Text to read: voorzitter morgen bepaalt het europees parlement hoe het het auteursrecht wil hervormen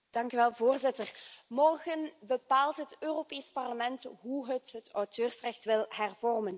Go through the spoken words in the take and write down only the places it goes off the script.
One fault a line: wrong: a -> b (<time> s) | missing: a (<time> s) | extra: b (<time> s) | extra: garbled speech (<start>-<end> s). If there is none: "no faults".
no faults